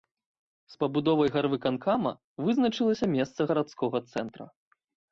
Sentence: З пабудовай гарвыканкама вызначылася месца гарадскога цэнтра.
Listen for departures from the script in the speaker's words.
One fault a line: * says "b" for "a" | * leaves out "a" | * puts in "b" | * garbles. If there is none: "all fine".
all fine